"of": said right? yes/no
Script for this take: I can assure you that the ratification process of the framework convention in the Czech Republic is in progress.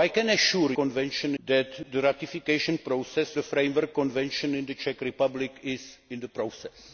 no